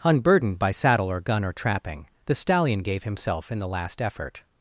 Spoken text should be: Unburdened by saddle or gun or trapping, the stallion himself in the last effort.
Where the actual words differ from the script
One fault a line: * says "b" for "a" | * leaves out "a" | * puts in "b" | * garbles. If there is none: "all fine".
* puts in "gave"